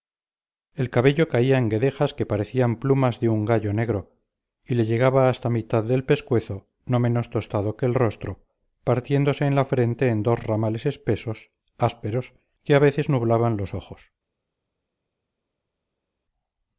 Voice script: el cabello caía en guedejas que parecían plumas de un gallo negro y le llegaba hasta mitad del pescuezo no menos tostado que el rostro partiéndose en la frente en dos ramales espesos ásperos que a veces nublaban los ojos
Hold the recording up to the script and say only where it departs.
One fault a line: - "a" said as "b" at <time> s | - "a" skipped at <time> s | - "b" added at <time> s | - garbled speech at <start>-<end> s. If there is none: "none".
none